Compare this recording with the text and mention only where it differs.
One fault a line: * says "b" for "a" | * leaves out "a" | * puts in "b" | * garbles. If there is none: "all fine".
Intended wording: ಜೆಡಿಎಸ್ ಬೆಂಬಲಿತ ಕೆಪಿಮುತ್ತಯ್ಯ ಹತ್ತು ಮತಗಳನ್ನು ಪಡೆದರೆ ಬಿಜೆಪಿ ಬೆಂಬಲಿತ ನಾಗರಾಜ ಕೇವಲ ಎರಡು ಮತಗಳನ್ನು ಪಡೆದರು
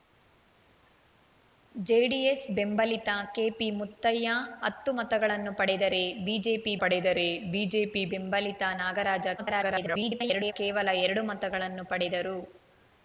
* puts in "ಪಡೆದರೆ ಬಿಜೆಪಿ"
* garbles